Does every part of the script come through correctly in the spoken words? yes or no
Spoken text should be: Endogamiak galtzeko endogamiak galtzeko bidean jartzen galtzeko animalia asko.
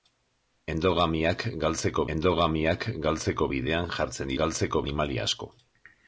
yes